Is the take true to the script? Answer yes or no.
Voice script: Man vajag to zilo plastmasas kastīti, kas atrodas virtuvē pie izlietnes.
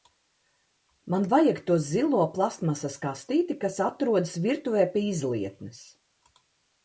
yes